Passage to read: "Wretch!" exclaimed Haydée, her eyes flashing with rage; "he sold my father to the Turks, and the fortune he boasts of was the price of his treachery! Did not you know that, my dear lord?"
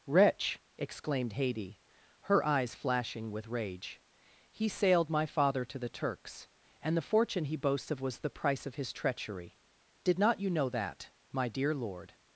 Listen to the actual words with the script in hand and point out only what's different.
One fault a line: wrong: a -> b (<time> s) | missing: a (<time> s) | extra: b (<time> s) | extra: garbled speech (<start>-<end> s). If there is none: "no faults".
wrong: sold -> sailed (4.7 s)